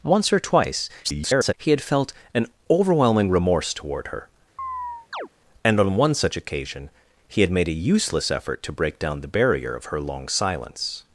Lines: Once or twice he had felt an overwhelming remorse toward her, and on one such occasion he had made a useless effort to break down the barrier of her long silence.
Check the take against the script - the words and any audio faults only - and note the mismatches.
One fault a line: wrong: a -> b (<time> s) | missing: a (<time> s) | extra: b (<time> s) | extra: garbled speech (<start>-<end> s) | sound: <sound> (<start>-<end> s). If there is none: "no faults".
extra: garbled speech (1.0-1.5 s)
sound: chirp (4.6-5.3 s)